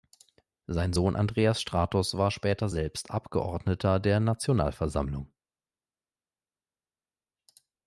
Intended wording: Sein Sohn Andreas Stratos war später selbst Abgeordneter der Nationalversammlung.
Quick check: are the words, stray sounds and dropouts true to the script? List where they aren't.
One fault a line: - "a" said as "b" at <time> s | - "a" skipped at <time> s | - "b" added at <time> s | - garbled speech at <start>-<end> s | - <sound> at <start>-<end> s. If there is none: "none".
none